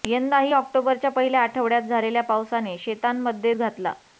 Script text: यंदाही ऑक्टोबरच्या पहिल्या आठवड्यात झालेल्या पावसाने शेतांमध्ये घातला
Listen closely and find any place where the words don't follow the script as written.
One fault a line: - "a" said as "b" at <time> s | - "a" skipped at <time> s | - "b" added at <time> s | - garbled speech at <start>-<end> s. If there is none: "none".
none